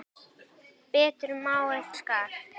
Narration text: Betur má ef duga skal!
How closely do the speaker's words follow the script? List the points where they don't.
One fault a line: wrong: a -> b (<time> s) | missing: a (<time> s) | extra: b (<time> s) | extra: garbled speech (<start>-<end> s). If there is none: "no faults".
missing: duga (1.9 s)